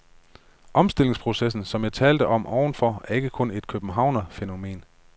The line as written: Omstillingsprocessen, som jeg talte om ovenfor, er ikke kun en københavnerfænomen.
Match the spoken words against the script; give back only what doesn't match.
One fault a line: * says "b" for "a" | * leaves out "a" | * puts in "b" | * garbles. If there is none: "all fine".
* says "et" for "en"